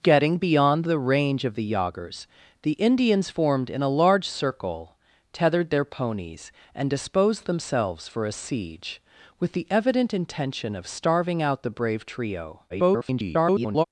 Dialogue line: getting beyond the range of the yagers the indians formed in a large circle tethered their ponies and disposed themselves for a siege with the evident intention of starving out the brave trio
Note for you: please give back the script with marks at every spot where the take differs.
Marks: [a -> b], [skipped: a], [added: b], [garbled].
getting beyond the range of the yagers the indians formed in a large circle tethered their ponies and disposed themselves for a siege with the evident intention of starving out the brave trio [garbled]